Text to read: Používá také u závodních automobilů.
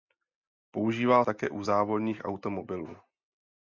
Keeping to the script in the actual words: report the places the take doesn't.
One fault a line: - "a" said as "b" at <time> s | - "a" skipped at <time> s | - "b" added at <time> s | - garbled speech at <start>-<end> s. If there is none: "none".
none